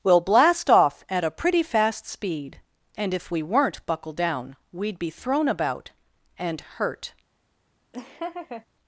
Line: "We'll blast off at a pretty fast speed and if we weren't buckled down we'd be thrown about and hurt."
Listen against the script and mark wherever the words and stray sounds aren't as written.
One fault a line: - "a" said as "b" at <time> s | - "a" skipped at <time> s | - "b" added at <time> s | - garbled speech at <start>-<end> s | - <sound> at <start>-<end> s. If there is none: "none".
- laugh at 7.9-8.7 s